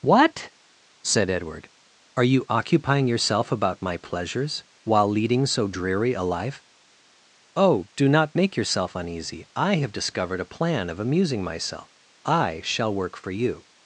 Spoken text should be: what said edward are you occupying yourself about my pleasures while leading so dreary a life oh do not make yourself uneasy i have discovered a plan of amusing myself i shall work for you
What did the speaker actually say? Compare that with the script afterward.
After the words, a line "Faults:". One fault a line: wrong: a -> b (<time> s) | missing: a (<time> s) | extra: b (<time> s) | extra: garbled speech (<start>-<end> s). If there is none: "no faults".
what said edward are you occupying yourself about my pleasures while leading so dreary a life oh do not make yourself uneasy i have discovered a plan of amusing myself i shall work for you
Faults:
no faults